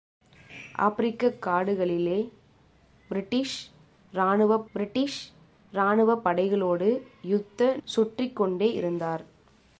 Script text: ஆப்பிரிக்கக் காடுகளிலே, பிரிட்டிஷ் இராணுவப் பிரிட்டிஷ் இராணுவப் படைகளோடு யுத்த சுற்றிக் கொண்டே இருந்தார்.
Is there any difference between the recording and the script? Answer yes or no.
no